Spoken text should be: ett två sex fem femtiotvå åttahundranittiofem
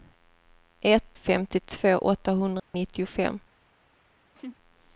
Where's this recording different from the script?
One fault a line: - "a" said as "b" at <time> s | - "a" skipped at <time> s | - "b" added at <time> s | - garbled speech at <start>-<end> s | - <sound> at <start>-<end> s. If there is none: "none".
- "två sex fem" skipped at 1.2 s
- dropout at 2.6-2.7 s
- laugh at 4.3-4.6 s